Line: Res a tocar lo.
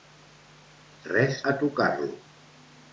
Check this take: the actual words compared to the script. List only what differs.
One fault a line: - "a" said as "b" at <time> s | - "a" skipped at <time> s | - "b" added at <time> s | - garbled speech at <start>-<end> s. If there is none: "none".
none